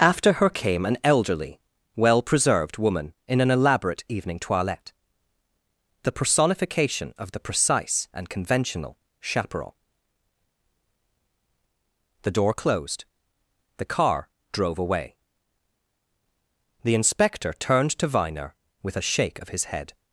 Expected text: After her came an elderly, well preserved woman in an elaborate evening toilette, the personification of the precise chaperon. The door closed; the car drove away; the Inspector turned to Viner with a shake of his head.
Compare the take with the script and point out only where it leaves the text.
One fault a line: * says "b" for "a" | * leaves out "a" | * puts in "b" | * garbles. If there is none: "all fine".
* puts in "and conventional"